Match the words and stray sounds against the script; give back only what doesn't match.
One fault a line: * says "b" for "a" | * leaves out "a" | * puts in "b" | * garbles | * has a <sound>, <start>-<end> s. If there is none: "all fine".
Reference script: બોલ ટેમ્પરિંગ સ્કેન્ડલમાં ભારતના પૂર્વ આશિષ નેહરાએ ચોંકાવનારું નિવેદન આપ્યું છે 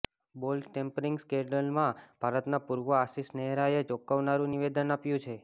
all fine